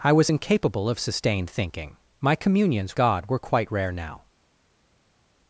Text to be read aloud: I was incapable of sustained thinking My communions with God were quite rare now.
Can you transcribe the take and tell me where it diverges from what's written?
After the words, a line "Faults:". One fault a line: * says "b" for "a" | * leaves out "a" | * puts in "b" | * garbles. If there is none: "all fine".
I was incapable of sustained thinking My communions God were quite rare now.
Faults:
* leaves out "with"